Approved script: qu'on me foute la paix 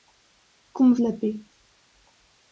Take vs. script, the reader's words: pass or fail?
fail